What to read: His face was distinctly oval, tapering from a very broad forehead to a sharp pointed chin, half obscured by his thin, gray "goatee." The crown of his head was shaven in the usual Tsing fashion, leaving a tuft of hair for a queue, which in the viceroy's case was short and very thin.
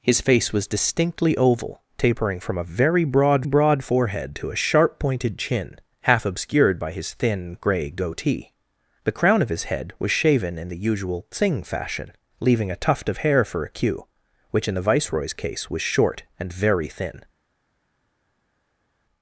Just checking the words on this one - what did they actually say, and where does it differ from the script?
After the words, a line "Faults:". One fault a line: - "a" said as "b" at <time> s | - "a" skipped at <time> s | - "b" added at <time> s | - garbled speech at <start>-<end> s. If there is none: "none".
His face was distinctly oval, tapering from a very broad broad forehead to a sharp pointed chin, half obscured by his thin, gray "goatee." The crown of his head was shaven in the usual Tsing fashion, leaving a tuft of hair for a queue, which in the viceroy's case was short and very thin.
Faults:
- "broad" added at 3.4 s